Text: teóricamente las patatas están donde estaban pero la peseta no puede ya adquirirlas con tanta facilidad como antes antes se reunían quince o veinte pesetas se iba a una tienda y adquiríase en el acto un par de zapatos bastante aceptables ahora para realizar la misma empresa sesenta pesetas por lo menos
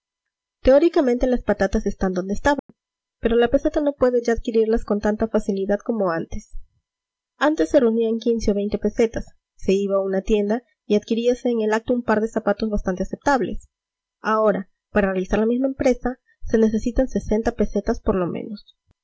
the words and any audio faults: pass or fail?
fail